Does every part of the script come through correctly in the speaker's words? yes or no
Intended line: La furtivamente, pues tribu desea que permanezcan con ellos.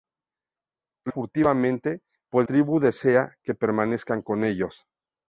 yes